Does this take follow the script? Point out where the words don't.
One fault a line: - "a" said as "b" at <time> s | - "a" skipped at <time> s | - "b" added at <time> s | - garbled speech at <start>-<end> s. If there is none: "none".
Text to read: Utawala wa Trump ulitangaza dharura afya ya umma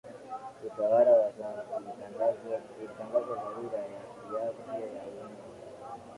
none